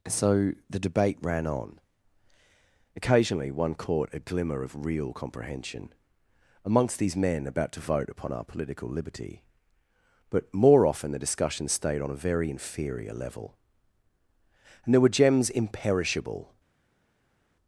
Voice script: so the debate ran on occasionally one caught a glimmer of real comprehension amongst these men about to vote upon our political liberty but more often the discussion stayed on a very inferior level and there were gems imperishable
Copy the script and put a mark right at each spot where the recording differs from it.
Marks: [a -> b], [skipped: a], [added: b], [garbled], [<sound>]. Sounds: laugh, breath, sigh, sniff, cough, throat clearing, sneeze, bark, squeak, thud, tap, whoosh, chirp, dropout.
so the debate ran on occasionally one caught a glimmer of real comprehension amongst these men about to vote upon our political liberty but more often the discussion stayed on a very inferior level and there were gems imperishable